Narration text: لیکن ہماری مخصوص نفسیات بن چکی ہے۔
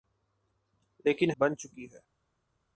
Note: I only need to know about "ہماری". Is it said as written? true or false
false